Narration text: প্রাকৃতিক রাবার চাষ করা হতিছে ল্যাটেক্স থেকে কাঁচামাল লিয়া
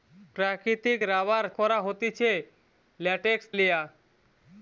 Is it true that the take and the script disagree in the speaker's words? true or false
true